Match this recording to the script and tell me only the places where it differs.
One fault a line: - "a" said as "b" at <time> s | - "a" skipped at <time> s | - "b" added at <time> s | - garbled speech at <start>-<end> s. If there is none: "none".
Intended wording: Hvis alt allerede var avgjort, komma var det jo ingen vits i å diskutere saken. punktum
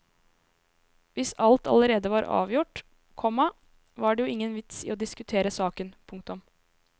none